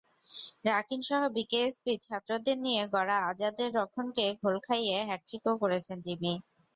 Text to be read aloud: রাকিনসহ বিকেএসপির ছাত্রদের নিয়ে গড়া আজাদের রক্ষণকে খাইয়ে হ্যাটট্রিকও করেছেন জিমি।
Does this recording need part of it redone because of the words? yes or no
yes